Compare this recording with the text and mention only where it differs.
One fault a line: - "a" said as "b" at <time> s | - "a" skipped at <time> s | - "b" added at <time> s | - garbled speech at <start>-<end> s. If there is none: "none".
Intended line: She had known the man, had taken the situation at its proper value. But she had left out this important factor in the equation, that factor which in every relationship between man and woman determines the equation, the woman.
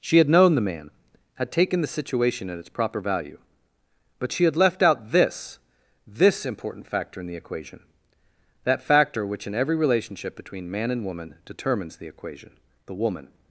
- "this" added at 6.1 s